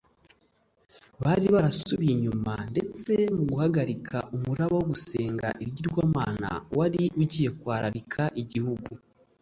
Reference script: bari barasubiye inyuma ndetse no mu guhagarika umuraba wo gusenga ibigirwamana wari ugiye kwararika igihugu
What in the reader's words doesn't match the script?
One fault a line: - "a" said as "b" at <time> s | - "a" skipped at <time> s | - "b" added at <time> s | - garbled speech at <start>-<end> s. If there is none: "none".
- "no" skipped at 3.1 s